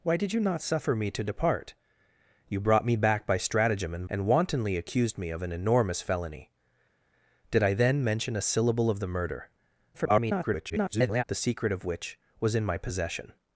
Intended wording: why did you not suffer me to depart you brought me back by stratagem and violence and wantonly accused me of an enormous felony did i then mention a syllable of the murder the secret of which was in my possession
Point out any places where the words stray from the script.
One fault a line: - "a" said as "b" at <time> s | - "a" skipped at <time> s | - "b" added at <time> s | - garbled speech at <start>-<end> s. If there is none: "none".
- "violence" skipped at 4.0 s
- garbled speech at 9.9-11.2 s